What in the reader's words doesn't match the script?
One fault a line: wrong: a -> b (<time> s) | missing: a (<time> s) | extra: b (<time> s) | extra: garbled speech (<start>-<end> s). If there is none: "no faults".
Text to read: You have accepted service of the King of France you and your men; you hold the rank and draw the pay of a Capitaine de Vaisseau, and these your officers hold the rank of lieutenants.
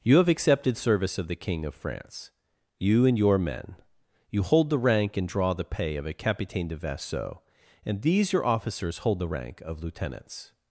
no faults